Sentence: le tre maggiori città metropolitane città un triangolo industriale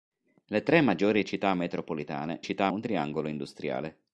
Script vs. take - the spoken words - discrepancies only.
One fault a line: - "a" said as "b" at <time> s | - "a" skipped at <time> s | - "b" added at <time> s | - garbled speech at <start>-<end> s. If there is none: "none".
none